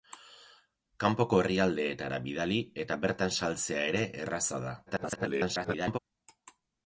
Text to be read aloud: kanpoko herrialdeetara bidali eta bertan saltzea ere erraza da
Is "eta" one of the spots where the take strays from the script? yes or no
no